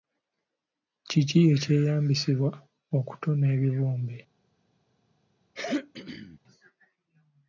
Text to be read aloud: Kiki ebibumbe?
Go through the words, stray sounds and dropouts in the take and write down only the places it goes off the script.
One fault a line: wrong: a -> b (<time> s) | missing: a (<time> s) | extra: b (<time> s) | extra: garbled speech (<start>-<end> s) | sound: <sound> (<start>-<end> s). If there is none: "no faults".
extra: ekyeyambisibwa okutona (1.5 s)
sound: throat clearing (5.5-6.4 s)